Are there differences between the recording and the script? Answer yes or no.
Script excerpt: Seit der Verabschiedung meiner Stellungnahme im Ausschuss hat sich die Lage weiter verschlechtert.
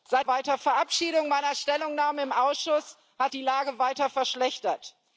yes